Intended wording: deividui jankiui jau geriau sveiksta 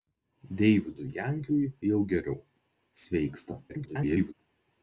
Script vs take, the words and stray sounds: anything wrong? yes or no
yes